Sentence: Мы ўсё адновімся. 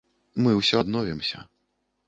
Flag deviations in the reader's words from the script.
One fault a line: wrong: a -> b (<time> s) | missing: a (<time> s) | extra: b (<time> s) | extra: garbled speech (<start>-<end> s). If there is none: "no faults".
no faults